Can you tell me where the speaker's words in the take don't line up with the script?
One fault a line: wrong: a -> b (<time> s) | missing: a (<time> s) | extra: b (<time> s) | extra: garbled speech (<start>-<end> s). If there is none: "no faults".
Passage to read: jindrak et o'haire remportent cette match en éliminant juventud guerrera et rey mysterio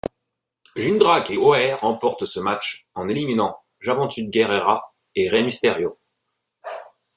wrong: cette -> ce (2.3 s)